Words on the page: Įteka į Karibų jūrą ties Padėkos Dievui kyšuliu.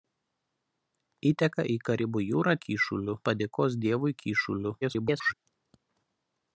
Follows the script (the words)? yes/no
no